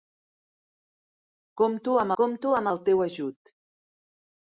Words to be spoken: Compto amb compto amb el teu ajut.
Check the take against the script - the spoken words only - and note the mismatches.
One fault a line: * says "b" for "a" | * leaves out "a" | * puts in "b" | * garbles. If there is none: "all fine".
all fine